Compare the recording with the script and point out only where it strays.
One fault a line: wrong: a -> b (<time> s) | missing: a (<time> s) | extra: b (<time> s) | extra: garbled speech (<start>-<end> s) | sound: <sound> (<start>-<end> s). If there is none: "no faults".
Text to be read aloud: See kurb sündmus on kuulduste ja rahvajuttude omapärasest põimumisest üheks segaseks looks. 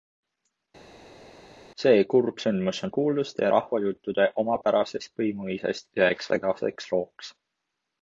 no faults